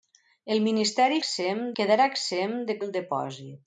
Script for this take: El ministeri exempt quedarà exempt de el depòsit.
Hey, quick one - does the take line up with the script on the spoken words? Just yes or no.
yes